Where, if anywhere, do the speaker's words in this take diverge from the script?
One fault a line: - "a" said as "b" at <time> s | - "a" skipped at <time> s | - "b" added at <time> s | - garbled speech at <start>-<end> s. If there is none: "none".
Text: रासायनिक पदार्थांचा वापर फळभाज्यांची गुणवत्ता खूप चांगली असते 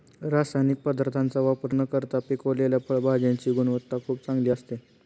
- "न करता पिकवलेल्या" added at 1.7 s